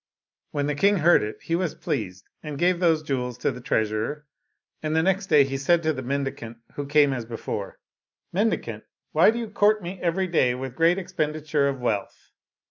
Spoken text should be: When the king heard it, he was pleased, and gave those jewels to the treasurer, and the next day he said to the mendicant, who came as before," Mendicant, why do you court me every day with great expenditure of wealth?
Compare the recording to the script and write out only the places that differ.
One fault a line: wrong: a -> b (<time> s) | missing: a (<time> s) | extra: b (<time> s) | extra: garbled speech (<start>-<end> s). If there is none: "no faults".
no faults